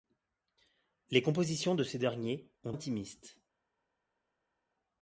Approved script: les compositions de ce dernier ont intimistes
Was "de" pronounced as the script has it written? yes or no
yes